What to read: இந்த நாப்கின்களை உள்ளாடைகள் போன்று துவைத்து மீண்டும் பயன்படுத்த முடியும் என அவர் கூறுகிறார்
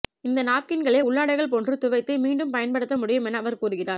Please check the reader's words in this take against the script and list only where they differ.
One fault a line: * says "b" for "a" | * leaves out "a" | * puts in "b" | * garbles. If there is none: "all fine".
all fine